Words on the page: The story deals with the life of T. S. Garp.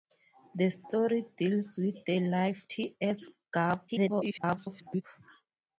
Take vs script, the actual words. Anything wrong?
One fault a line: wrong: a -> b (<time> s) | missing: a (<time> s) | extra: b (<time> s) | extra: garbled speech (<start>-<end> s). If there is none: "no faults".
missing: of (2.6 s)
extra: garbled speech (3.9-5.0 s)